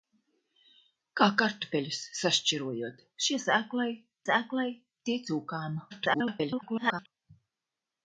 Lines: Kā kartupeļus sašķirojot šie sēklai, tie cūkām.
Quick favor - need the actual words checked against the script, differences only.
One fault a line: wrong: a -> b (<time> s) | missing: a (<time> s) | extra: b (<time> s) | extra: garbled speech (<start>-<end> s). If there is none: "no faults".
extra: sēklai (4.3 s)
extra: garbled speech (5.9-7.1 s)